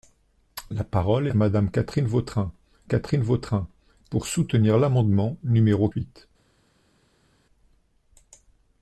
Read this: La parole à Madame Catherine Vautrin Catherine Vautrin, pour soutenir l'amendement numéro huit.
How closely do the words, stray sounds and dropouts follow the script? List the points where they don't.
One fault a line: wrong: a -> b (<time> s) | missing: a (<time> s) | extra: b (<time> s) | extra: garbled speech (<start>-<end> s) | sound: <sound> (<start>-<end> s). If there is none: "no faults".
no faults